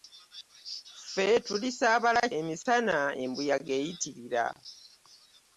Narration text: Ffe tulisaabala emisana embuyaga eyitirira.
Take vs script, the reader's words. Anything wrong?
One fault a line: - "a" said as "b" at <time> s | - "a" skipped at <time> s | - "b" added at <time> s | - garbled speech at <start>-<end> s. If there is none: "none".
none